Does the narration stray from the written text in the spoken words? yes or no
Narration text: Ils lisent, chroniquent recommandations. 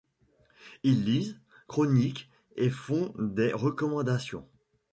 yes